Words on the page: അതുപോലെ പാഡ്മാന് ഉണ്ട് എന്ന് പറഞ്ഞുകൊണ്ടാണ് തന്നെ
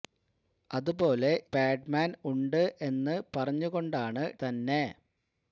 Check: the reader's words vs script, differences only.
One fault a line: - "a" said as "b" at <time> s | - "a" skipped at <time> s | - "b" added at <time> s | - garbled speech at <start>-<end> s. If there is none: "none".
none